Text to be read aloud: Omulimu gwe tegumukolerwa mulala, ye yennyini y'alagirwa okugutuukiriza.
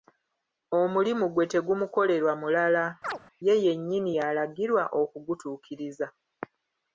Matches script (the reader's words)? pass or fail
pass